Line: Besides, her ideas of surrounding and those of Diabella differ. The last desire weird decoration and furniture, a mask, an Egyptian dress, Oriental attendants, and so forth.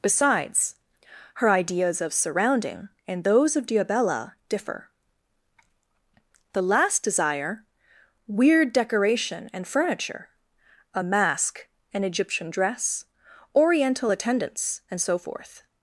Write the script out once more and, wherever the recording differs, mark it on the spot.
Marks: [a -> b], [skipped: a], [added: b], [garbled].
Besides, her ideas of surrounding and those of Diabella differ. The last desire weird decoration and furniture, a mask, an Egyptian dress, Oriental attendants, and so forth.